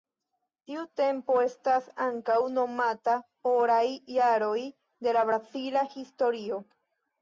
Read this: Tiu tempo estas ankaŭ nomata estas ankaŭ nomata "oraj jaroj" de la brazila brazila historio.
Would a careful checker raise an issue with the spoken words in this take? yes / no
yes